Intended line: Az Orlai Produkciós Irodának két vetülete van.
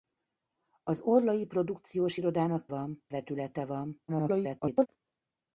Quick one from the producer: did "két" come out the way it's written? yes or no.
no